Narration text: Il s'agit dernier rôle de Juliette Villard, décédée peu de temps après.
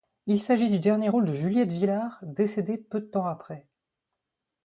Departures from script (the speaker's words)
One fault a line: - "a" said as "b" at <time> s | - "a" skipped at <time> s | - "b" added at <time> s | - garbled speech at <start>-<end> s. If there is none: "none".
- "du" added at 0.7 s